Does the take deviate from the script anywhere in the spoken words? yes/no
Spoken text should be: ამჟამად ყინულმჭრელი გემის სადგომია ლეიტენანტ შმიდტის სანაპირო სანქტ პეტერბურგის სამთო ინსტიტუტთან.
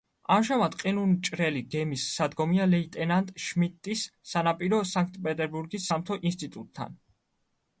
no